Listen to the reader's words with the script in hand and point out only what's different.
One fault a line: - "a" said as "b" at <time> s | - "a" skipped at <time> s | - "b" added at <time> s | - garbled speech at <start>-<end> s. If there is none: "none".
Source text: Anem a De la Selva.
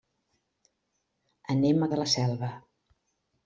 none